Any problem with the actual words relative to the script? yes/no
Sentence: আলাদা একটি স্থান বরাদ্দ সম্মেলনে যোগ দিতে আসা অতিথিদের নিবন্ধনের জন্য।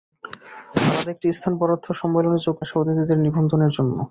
yes